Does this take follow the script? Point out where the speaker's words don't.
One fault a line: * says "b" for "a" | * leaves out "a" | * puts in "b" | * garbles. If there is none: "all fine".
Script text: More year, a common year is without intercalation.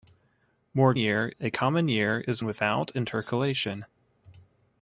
all fine